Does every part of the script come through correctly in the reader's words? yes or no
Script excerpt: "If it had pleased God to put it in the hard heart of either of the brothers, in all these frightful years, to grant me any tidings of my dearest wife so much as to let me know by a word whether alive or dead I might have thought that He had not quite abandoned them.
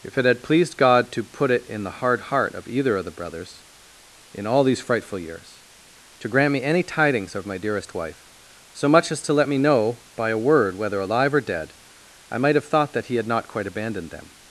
yes